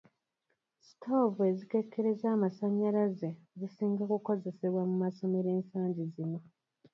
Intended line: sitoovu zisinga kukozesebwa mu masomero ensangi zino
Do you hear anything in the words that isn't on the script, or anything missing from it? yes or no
yes